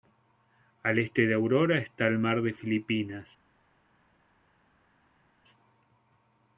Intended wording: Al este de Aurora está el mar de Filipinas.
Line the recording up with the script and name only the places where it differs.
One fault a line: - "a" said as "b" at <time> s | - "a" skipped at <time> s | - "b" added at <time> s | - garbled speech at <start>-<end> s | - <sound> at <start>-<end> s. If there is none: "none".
none